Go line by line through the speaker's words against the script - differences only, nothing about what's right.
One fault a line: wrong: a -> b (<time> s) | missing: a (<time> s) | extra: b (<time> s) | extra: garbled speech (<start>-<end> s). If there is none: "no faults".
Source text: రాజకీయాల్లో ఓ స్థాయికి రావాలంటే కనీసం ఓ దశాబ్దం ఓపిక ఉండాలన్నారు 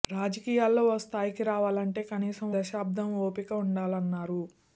missing: ఓ (2.5 s)